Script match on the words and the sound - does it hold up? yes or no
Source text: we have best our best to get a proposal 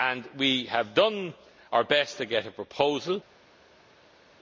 no